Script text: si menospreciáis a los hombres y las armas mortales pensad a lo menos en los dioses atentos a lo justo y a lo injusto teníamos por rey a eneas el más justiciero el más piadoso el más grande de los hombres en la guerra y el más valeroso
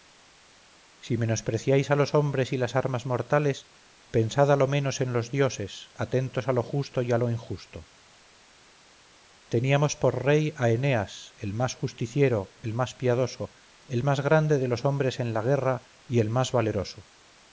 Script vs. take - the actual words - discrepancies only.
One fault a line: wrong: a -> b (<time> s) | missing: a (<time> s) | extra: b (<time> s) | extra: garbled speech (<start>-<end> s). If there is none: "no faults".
no faults